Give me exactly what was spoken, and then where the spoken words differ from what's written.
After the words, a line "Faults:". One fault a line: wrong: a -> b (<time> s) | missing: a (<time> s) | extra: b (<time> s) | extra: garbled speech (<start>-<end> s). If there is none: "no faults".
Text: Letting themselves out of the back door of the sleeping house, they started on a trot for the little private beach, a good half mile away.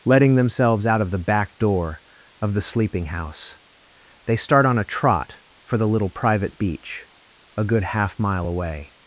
Letting themselves out of the back door of the sleeping house, they start on a trot for the little private beach, a good half mile away.
Faults:
wrong: started -> start (4.3 s)